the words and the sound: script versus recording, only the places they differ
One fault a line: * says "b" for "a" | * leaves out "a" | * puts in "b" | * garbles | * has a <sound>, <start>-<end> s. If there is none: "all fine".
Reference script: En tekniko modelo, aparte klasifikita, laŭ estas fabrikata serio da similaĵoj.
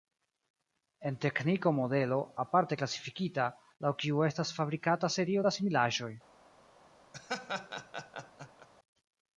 * puts in "kiu"
* has a laugh, 7.1-8.7 s